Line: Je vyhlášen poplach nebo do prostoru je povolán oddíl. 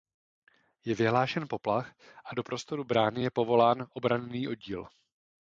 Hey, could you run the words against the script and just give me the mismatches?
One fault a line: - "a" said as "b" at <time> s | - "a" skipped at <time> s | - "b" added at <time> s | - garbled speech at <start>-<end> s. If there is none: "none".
- "nebo" said as "a" at 2.2 s
- "brány" added at 2.8 s
- "obranný" added at 3.9 s